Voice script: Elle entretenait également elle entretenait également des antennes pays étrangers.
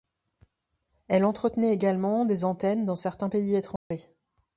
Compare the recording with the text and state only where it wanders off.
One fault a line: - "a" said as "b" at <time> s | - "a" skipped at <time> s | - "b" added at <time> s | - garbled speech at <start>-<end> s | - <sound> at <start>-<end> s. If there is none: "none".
- "elle entretenait également des antennes" said as "des antennes dans certains" at 2.2 s
- dropout at 3.8-3.9 s